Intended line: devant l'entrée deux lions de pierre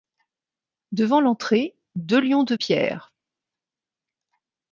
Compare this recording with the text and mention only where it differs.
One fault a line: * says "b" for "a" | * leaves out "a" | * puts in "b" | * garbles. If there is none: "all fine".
all fine